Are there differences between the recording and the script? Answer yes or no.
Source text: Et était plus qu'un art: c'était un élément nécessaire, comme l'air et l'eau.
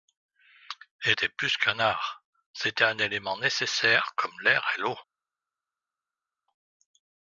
no